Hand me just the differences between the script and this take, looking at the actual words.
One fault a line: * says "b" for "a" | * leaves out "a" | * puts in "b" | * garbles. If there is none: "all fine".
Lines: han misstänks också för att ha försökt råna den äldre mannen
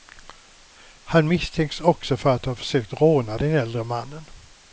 all fine